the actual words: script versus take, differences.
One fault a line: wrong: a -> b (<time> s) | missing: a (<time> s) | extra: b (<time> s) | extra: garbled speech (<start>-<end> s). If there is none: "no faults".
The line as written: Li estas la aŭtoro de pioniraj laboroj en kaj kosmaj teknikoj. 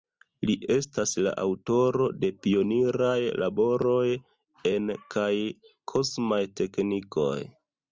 no faults